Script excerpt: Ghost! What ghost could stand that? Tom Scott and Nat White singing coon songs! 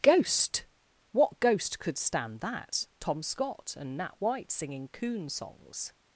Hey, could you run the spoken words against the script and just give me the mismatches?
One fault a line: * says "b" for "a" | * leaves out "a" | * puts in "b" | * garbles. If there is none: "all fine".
all fine